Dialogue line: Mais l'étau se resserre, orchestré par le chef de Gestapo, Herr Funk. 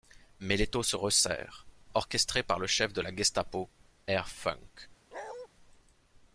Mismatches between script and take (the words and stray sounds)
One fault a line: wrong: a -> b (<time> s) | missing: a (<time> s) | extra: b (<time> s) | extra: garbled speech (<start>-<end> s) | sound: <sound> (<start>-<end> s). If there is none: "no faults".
extra: la (3.0 s)
sound: bark (5.1-5.5 s)